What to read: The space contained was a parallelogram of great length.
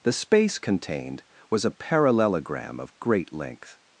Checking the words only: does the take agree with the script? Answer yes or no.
yes